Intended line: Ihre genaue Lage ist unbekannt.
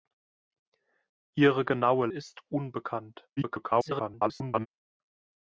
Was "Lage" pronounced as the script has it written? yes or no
no